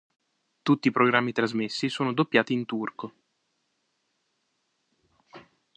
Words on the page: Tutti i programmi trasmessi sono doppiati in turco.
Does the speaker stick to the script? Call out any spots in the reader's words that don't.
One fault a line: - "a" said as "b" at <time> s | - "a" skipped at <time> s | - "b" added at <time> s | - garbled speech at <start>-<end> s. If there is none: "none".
none